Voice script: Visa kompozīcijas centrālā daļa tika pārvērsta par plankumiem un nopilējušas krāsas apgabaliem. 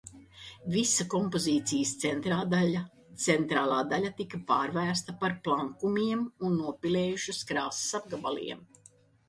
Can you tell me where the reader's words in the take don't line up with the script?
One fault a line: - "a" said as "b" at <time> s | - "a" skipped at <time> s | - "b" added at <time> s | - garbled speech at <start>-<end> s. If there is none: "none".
none